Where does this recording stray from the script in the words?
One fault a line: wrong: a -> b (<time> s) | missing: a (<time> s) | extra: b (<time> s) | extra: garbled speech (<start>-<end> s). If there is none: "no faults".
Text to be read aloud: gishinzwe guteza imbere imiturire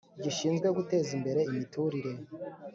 no faults